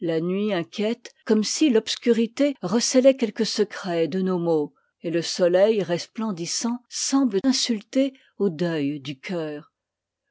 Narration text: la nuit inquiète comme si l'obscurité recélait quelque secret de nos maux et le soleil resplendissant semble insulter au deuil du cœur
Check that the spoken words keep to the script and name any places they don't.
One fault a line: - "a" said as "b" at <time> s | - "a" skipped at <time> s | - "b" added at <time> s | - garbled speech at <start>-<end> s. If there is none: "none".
none